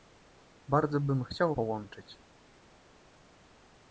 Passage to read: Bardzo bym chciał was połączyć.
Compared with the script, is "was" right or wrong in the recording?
wrong